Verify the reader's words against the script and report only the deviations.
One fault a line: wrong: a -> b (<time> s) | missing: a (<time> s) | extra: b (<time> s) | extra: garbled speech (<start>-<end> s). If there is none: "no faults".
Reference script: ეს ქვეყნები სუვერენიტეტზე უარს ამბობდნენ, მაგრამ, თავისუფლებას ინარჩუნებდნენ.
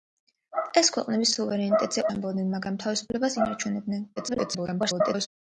missing: უარს (2.0 s)
extra: garbled speech (4.2-5.3 s)